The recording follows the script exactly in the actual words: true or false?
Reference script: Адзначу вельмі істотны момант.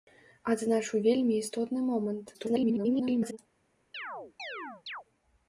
false